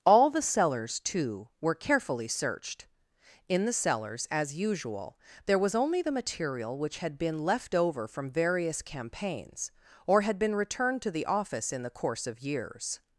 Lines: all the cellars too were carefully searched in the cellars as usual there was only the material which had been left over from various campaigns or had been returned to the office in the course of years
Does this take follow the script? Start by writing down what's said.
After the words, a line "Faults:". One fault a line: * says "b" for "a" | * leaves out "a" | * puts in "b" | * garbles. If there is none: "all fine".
all the cellars too were carefully searched in the cellars as usual there was only the material which had been left over from various campaigns or had been returned to the office in the course of years
Faults:
all fine